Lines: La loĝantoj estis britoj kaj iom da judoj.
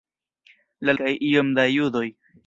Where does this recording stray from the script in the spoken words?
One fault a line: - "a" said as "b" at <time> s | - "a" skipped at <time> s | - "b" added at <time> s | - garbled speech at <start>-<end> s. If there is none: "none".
- "loĝantoj estis britoj" skipped at 0.9 s